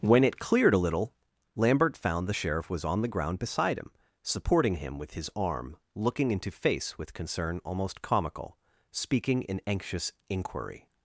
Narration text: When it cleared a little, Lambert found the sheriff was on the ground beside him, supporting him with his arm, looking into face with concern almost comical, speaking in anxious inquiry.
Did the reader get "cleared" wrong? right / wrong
right